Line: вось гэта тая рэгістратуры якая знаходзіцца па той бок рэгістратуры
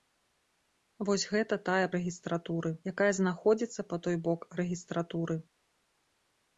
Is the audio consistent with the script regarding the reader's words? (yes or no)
yes